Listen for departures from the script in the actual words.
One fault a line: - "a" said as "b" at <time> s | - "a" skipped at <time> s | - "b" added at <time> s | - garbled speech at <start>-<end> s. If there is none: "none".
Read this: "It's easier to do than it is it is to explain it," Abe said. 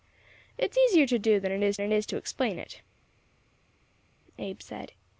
none